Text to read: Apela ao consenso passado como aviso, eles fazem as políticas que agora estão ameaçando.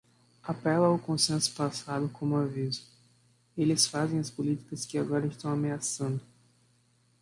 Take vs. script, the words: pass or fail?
pass